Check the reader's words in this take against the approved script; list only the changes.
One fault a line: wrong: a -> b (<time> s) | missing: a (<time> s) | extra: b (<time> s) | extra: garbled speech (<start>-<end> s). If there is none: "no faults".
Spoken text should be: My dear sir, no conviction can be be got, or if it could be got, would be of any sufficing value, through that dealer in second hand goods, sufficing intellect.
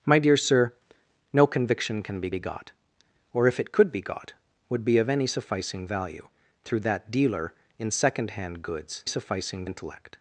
no faults